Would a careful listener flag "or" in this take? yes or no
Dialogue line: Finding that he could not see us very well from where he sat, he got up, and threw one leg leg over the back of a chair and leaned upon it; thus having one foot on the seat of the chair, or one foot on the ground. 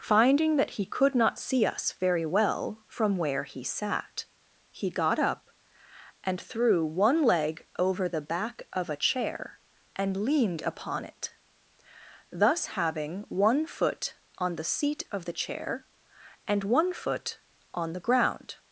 yes